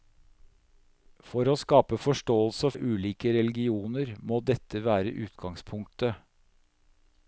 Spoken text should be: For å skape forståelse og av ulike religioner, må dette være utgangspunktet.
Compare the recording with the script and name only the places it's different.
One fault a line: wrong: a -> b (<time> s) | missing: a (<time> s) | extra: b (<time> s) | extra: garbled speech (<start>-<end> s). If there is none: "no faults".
no faults